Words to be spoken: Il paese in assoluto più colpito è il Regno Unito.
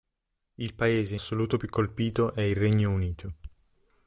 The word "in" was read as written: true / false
false